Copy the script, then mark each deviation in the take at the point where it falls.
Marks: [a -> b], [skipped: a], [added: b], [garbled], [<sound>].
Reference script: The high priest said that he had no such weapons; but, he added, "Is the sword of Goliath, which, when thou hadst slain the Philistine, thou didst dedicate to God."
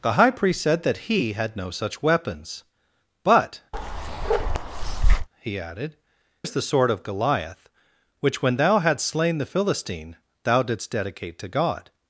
The high priest said that he had no such weapons; but, [bark] he added, "Is the sword of Goliath, which, when thou hadst slain the Philistine, thou didst dedicate to God."